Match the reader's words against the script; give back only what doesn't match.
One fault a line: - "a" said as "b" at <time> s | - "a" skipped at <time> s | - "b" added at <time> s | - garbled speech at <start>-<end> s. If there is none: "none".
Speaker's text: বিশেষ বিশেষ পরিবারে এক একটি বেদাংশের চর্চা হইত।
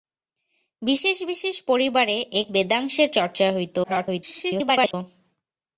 - "একটি" skipped at 2.5 s
- garbled speech at 3.8-4.9 s